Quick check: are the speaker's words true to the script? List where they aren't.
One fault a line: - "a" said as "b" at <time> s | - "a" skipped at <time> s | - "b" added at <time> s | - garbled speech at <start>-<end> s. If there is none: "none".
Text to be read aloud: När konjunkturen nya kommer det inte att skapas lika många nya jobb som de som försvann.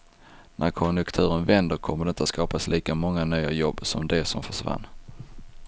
- "nya" said as "vänder" at 1.4 s